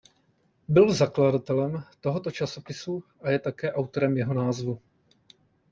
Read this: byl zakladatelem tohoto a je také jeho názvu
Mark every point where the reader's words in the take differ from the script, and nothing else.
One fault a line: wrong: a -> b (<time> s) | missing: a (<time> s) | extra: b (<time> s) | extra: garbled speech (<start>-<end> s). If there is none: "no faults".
extra: časopisu (2.3 s)
extra: autorem (3.7 s)